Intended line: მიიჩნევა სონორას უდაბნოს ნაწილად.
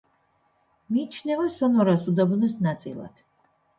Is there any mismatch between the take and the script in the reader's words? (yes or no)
no